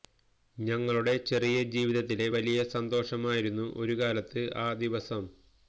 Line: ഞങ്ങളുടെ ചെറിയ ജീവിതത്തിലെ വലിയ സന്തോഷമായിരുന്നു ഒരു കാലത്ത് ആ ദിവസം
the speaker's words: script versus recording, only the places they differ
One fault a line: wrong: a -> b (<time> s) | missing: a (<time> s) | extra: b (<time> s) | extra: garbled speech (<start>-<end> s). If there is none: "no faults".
no faults